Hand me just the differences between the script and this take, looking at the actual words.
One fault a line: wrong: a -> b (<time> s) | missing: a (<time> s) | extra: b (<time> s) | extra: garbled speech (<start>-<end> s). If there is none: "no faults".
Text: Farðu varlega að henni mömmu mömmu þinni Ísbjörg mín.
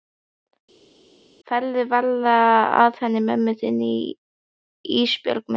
missing: mömmu (3.6 s)